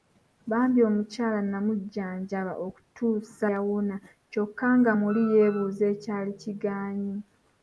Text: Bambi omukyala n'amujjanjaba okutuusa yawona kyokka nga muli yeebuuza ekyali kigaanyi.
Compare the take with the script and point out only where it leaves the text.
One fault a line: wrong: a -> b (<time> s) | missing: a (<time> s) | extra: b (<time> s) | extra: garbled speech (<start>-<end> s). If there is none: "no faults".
no faults